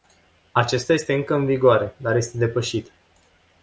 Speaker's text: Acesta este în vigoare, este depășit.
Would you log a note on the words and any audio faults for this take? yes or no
yes